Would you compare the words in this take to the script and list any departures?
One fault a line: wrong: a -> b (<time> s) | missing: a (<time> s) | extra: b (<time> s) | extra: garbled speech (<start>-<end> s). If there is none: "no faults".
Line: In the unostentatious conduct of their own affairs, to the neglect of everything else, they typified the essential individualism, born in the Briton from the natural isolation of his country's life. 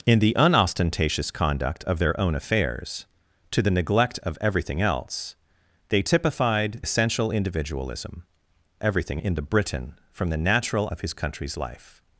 missing: the (6.8 s)
wrong: born -> everything (8.8 s)
missing: isolation (10.9 s)